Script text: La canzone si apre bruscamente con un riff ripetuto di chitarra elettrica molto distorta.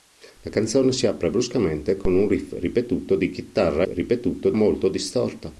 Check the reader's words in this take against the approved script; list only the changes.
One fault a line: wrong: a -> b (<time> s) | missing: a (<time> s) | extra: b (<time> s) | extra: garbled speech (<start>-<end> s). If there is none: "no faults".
wrong: elettrica -> ripetuto (3.9 s)